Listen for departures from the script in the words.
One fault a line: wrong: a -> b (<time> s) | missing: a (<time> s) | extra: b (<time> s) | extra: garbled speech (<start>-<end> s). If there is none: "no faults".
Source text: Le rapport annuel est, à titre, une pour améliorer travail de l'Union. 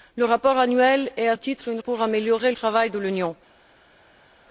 no faults